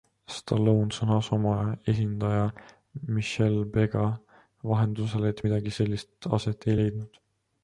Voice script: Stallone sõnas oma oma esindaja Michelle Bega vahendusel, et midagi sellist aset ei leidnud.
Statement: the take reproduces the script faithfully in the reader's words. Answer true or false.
false